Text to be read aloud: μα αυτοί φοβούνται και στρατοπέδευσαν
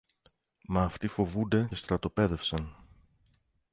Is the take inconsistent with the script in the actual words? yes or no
yes